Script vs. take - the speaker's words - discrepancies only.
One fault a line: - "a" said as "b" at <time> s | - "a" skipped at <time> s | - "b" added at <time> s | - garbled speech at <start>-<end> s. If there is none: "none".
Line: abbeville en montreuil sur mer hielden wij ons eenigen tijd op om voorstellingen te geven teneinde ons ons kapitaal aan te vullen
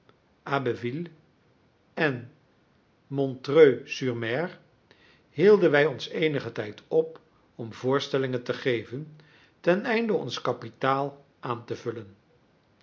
- "ons" skipped at 10.4 s